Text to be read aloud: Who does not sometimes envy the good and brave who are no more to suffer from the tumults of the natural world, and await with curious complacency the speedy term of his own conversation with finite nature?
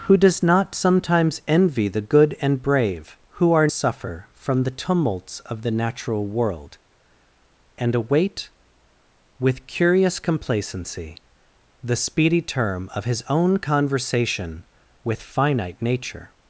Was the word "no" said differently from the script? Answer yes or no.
yes